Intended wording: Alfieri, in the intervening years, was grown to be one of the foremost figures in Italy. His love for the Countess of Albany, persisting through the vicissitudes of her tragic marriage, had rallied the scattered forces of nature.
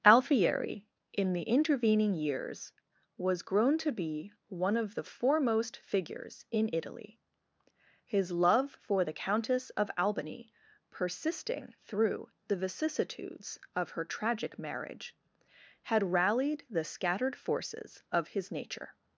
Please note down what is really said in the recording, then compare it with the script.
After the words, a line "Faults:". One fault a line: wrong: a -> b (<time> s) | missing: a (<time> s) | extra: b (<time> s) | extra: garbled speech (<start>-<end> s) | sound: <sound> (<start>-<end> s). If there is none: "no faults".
Alfieri, in the intervening years, was grown to be one of the foremost figures in Italy. His love for the Countess of Albany, persisting through the vicissitudes of her tragic marriage, had rallied the scattered forces of his nature.
Faults:
extra: his (18.3 s)